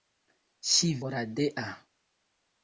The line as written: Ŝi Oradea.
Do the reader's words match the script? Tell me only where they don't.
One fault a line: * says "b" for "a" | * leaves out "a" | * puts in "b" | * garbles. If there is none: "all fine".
all fine